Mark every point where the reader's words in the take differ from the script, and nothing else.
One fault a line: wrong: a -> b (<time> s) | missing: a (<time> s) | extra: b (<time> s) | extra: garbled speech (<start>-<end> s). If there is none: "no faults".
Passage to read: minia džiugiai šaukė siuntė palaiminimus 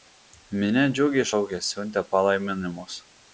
no faults